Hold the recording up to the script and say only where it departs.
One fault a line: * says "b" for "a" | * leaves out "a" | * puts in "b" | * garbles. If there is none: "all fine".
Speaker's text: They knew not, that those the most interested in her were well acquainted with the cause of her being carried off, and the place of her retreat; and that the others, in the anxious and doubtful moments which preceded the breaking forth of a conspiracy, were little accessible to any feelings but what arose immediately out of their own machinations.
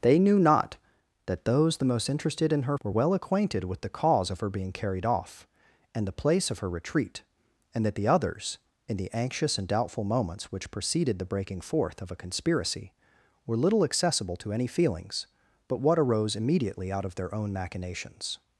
all fine